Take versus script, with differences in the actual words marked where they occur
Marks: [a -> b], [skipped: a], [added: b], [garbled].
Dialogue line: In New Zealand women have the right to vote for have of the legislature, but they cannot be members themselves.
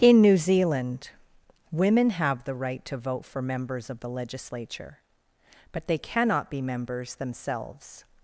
In New Zealand women have the right to vote for [have -> members] of the legislature, but they cannot be members themselves.